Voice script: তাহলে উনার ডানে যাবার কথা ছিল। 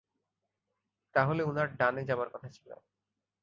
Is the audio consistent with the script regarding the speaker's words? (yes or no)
yes